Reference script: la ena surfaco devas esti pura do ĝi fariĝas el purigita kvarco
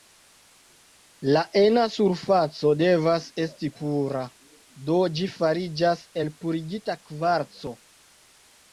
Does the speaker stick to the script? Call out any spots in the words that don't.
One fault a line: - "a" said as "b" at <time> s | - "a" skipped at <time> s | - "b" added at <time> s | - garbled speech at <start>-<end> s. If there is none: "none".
none